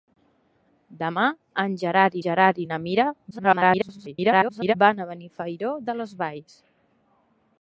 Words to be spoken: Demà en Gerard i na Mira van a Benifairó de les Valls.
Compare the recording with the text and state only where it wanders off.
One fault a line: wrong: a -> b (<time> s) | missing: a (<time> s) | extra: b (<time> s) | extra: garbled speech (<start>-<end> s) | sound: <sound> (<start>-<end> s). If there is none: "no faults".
extra: Gerard (2.3 s)
extra: garbled speech (3.3-4.7 s)